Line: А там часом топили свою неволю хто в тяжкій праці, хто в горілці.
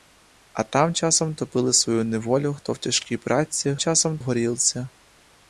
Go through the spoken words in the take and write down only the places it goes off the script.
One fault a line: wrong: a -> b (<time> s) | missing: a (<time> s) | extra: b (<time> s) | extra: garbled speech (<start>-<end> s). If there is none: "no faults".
wrong: хто -> часом (3.8 s)